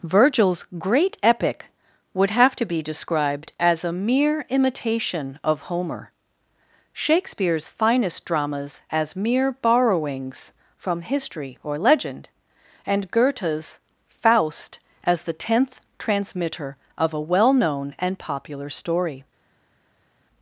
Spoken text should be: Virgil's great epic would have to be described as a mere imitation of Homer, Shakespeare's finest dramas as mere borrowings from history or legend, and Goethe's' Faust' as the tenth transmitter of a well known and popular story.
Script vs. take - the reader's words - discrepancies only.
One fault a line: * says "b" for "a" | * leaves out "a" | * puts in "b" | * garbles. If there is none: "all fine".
all fine